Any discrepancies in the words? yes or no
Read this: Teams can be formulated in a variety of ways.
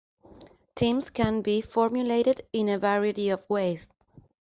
no